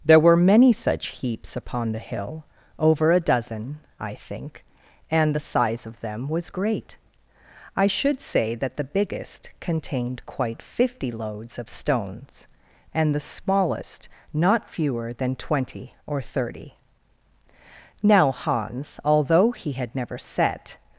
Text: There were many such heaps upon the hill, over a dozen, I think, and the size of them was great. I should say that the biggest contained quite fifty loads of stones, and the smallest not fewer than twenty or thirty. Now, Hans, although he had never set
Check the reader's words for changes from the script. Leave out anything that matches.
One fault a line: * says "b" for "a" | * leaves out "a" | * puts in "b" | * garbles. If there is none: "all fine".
all fine